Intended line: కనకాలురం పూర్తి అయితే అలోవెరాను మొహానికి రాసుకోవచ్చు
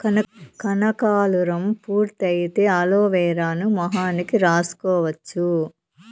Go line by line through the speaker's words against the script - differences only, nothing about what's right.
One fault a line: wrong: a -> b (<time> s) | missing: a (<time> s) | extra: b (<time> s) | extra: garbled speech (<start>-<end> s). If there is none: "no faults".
no faults